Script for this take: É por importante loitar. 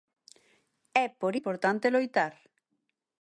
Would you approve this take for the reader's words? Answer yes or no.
yes